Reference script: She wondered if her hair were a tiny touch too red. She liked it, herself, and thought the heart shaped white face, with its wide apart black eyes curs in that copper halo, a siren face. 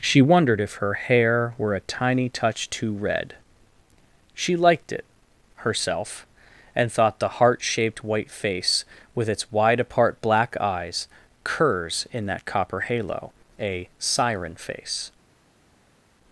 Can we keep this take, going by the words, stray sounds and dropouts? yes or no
yes